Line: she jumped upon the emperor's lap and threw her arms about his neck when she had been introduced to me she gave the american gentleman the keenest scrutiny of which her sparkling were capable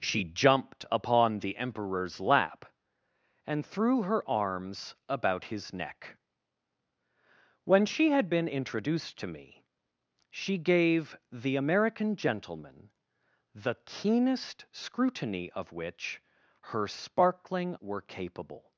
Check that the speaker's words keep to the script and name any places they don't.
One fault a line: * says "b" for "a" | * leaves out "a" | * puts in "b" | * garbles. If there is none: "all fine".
all fine